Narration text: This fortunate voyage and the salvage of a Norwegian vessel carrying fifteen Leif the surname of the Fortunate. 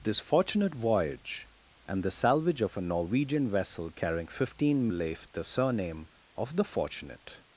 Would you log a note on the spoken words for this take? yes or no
no